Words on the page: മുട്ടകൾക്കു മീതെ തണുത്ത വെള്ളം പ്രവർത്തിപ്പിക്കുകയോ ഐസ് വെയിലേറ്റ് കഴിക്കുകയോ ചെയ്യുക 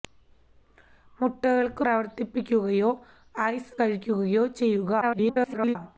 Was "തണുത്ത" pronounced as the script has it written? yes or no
no